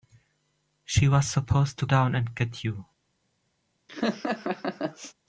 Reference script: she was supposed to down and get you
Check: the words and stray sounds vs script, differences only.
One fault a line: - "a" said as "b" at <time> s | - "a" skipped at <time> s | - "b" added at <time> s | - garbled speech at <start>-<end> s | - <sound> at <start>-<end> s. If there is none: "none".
- laugh at 3.9-5.1 s